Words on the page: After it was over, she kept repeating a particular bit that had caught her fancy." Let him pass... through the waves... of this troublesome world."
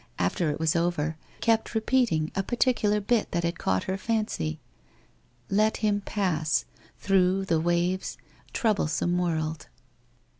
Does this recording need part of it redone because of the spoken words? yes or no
yes